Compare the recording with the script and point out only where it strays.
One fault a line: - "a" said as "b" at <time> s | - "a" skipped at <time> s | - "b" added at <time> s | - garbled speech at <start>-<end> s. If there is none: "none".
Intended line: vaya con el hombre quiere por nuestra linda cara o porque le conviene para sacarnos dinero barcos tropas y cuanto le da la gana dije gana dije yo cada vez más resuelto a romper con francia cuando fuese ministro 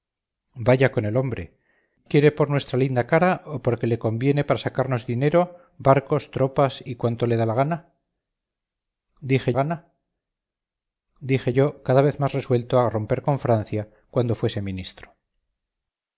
none